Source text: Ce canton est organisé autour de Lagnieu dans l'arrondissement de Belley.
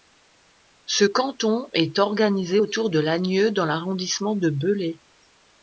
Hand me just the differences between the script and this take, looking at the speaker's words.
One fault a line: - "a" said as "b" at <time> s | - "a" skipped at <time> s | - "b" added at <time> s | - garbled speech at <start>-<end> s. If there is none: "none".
none